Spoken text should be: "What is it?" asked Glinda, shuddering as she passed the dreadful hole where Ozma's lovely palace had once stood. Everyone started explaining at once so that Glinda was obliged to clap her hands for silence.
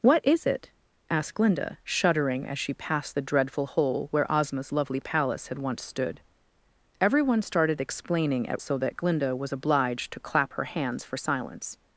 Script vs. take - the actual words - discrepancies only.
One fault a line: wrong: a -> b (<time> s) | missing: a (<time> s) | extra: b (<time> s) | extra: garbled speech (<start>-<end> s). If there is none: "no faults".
missing: once (8.6 s)